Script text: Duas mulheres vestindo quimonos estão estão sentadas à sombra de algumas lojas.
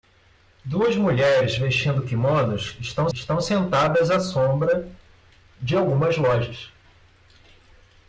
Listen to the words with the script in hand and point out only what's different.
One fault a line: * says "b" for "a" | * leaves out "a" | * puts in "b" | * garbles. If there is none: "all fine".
all fine